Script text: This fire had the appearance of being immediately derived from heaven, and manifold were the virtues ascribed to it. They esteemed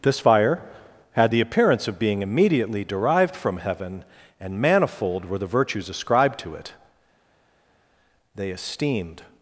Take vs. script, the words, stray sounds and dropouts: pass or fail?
pass